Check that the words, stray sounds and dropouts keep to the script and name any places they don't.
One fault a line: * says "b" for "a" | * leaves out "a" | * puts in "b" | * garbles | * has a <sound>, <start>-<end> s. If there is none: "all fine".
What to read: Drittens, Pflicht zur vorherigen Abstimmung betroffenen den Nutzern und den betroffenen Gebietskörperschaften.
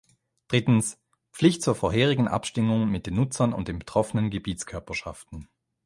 * says "mit" for "betroffenen"